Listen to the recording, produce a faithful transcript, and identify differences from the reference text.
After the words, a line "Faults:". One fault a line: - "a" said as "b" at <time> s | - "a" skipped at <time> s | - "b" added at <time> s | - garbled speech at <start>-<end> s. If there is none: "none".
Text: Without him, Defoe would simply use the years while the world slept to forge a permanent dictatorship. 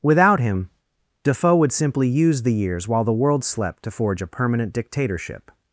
Without him, Defoe would simply use the years while the world slept to forge a permanent dictatorship.
Faults:
none